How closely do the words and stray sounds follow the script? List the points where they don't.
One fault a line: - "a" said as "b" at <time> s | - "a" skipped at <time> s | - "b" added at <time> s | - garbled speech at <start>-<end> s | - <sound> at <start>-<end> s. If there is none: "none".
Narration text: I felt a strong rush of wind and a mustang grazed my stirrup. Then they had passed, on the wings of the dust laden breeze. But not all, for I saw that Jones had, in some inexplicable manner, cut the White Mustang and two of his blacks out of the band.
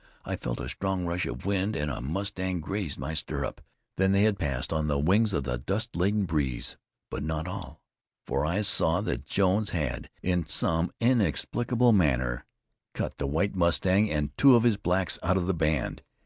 none